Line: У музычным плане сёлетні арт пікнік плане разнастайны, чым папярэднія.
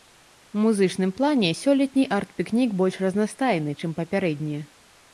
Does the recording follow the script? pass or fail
fail